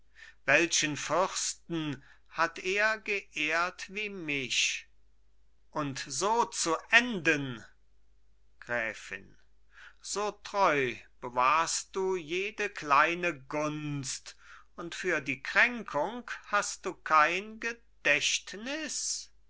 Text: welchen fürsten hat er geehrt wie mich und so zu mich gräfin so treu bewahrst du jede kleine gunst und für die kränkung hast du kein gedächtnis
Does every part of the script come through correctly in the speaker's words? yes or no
no